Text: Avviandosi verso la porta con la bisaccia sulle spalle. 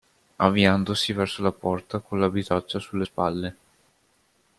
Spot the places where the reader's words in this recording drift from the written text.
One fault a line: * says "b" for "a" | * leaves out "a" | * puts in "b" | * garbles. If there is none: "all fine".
all fine